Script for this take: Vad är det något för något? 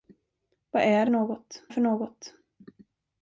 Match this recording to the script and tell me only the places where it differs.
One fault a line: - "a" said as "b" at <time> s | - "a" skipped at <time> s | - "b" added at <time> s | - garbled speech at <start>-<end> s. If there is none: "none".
none